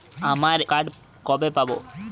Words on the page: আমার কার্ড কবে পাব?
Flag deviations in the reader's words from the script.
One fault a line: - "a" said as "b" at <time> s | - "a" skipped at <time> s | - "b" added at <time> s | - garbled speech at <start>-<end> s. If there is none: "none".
none